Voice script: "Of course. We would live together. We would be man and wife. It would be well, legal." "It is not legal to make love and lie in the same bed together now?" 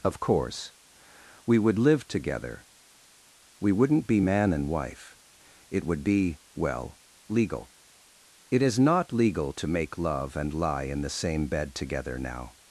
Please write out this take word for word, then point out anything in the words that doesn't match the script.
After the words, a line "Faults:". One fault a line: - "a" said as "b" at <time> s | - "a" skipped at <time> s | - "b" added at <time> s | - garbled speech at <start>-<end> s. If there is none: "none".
"Of course. We would live together. We wouldn't be man and wife. It would be well, legal." "It is not legal to make love and lie in the same bed together now?"
Faults:
- "would" said as "wouldn't" at 3.7 s